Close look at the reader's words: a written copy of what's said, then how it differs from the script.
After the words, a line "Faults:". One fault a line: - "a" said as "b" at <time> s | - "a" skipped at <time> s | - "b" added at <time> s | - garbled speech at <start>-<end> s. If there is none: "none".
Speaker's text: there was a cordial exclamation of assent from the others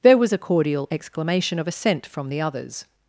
there was a cordial exclamation of assent from the others
Faults:
none